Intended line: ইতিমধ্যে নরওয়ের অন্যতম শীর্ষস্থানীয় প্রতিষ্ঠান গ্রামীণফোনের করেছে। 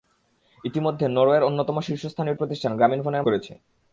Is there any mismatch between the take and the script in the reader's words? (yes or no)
no